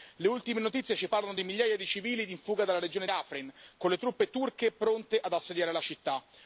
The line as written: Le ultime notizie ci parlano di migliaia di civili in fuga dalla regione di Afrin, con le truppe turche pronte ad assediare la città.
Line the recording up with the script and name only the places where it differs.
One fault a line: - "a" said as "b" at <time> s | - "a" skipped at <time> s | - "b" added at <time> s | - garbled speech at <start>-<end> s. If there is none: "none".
- "di" skipped at 3.1 s